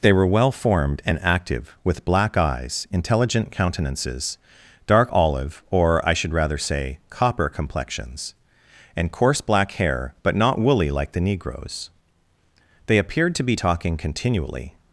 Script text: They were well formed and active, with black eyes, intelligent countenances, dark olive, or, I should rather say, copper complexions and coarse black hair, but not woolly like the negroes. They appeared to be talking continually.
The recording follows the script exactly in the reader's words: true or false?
true